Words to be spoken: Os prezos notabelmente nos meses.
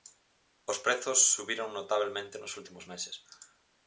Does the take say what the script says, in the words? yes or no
no